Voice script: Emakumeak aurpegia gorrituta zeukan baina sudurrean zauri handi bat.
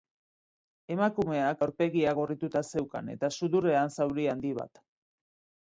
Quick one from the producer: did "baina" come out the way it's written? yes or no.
no